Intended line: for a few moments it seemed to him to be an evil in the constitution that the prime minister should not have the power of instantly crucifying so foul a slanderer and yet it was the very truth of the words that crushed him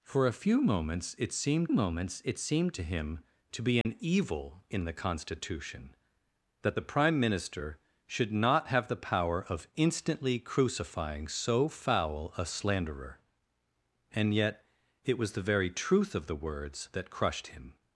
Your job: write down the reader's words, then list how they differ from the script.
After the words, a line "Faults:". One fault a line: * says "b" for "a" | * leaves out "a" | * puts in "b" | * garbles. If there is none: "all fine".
for a few moments it seemed moments it seemed to him to be an evil in the constitution that the prime minister should not have the power of instantly crucifying so foul a slanderer and yet it was the very truth of the words that crushed him
Faults:
* puts in "moments it seemed"